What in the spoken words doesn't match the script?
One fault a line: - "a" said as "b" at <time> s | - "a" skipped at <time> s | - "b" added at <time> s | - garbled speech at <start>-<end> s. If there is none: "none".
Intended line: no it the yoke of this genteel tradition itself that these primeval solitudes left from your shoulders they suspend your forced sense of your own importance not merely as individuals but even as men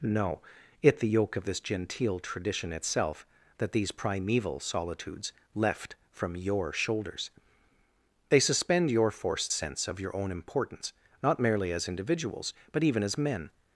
none